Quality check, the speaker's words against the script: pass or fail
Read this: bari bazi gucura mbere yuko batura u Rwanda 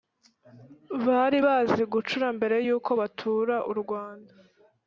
pass